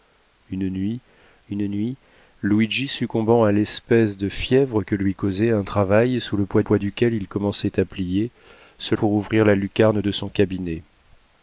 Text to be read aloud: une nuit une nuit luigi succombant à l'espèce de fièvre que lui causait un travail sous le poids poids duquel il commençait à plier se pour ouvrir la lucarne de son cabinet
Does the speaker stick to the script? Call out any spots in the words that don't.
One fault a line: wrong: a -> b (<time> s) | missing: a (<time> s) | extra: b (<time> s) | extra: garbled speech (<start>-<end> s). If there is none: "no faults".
no faults